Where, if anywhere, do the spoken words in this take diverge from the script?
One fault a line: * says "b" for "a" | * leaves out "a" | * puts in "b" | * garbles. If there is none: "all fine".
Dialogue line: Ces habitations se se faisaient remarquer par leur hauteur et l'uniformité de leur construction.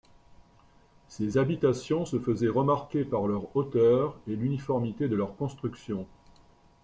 * leaves out "se"